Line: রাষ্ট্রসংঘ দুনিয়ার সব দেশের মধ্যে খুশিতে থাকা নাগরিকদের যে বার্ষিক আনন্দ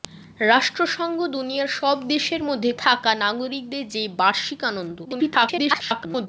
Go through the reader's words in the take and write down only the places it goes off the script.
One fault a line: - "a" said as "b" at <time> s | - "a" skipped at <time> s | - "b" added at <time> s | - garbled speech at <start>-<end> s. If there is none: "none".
- "খুশিতে" skipped at 2.7 s
- garbled speech at 5.0-6.3 s